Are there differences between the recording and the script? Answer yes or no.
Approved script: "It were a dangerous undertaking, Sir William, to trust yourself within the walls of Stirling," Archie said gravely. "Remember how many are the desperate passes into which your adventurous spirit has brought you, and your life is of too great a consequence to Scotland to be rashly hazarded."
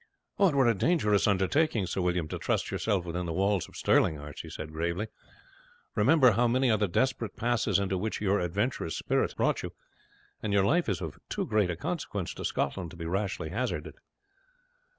yes